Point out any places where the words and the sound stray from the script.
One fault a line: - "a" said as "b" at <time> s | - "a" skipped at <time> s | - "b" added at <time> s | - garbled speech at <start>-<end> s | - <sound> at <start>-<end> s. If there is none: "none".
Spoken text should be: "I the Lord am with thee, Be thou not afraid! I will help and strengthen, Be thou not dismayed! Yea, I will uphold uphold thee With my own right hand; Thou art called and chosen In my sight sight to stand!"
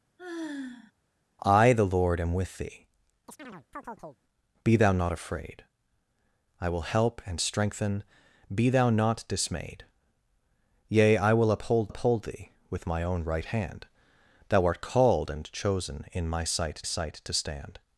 - sigh at 0.2-0.9 s
- chirp at 3.3-4.2 s